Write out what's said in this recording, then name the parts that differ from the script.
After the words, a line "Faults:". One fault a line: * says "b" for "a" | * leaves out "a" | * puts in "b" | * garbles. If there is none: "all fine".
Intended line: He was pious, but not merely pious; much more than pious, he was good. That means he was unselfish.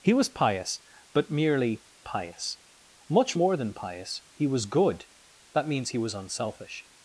He was pious, but merely pious; much more than pious, he was good. That means he was unselfish.
Faults:
* leaves out "not"